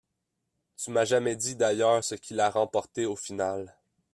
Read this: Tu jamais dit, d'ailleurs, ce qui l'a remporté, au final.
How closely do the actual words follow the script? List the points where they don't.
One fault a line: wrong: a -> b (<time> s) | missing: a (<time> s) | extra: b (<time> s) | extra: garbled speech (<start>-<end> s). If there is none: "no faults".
extra: m'as (0.9 s)